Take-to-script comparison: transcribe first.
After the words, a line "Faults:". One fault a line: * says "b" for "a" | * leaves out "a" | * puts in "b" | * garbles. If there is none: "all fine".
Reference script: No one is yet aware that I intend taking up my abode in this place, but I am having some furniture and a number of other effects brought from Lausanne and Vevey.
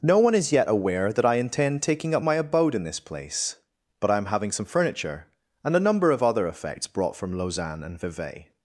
No one is yet aware that I intend taking up my abode in this place, but I am having some furniture and a number of other effects brought from Lausanne and Vevey.
Faults:
all fine